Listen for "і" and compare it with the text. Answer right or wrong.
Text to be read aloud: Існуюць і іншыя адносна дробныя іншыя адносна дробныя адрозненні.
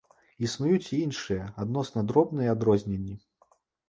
right